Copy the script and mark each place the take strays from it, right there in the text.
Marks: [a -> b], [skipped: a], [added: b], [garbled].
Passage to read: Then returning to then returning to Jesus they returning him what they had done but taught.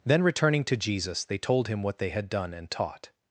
Then returning to [skipped: then returning to] Jesus they [returning -> told] him what they had done [but -> and] taught.